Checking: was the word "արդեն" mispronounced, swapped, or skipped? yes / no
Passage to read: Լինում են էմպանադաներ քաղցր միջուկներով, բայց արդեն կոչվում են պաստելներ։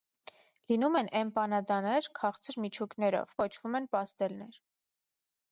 yes